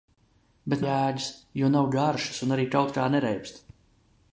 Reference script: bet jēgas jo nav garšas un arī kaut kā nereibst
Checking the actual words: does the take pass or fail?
pass